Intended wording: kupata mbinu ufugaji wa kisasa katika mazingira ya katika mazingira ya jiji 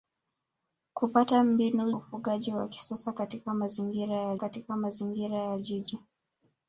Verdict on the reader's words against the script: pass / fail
pass